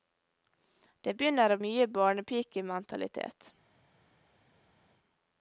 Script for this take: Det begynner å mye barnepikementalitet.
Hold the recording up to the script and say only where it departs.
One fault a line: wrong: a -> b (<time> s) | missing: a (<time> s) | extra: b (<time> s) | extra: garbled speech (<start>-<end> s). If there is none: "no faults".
no faults